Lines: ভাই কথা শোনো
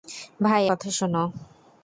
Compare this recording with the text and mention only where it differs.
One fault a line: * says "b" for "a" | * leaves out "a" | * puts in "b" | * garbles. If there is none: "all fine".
all fine